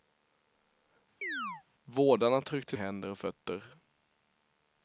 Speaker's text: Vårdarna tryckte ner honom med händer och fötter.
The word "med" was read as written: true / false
false